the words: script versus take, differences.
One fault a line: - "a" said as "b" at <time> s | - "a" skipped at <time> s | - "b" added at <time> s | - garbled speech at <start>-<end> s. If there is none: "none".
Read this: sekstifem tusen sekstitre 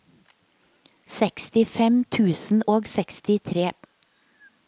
- "og" added at 2.7 s